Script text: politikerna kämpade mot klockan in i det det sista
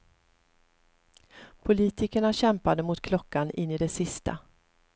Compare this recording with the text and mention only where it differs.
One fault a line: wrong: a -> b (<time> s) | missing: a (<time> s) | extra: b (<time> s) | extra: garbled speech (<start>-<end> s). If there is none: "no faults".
missing: det (3.9 s)